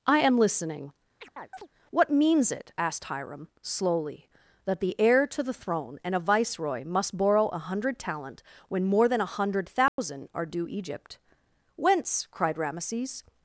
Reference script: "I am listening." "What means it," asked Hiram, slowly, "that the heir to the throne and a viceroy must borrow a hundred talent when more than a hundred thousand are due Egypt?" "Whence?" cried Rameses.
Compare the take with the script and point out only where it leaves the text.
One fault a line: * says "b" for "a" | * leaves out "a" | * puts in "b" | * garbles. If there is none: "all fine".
all fine